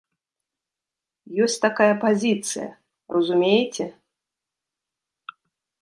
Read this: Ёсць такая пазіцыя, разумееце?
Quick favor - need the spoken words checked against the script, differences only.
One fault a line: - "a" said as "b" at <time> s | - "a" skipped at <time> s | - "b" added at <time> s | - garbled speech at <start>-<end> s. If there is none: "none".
none